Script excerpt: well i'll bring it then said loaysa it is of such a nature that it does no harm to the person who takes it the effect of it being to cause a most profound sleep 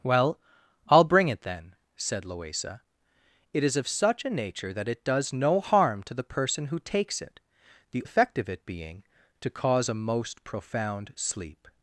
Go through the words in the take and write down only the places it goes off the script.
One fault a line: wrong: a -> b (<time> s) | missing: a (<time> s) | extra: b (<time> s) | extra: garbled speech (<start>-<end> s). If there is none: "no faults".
no faults